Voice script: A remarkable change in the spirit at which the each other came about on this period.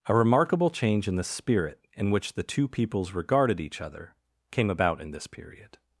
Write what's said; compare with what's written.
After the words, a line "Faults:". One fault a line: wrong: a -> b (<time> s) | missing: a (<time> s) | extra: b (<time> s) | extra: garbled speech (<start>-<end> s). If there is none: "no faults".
A remarkable change in the spirit in which the two peoples regarded each other came about in this period.
Faults:
wrong: at -> in (1.9 s)
extra: two peoples regarded (2.4 s)
wrong: on -> in (5.0 s)